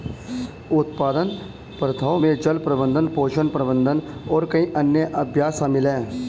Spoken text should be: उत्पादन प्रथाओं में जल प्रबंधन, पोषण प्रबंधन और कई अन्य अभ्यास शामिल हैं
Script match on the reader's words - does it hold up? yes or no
yes